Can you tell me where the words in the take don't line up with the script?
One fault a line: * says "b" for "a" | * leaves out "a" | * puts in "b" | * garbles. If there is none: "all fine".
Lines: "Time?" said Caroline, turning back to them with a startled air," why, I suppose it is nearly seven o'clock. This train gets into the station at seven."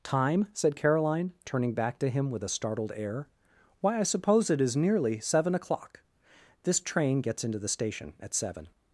* says "him" for "them"